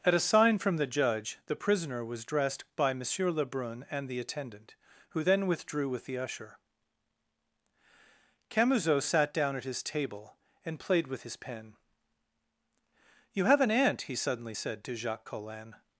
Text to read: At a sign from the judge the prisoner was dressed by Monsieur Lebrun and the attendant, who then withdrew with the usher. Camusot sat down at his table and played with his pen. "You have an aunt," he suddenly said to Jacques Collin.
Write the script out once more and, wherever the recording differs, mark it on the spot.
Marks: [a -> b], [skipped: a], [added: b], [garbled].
At a sign from the judge the prisoner was dressed by Monsieur Lebrun and the attendant, who then withdrew with the usher. Camusot sat down at his table and played with his pen. "You have an aunt," he suddenly said to Jacques Collin.